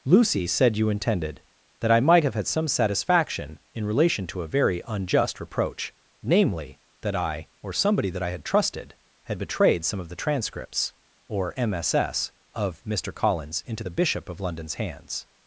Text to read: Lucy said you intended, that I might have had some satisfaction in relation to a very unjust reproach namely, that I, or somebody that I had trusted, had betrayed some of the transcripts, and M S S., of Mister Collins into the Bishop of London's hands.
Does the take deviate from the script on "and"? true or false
true